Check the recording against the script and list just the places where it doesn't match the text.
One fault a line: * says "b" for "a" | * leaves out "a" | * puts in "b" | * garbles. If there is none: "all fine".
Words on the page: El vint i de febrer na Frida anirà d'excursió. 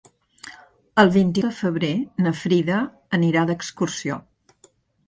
all fine